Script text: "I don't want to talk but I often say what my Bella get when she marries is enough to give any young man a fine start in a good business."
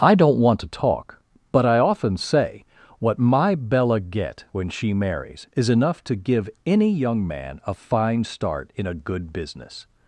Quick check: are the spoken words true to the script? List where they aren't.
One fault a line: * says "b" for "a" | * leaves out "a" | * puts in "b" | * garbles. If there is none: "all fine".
all fine